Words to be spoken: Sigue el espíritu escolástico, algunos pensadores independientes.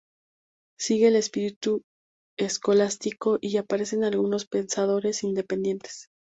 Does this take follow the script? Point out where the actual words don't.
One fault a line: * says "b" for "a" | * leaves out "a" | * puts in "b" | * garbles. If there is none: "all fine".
* puts in "y aparecen"